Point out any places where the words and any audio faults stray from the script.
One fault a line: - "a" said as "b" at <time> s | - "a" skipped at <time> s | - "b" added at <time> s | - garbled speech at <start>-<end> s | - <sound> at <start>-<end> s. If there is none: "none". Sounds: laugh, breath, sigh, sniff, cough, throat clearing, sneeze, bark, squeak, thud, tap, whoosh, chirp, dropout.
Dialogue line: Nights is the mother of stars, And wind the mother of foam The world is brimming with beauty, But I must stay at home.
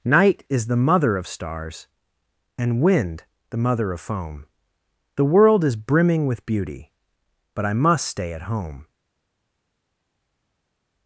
- "Nights" said as "Night" at 0.0 s